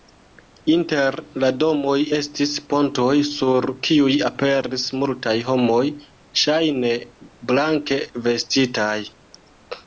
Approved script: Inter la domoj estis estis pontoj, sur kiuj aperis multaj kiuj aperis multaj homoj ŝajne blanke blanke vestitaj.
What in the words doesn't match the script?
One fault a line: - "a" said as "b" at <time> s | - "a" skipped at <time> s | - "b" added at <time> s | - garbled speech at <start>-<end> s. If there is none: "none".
- "estis" skipped at 2.5 s
- "kiuj aperis multaj" skipped at 5.3 s
- "blanke" skipped at 8.0 s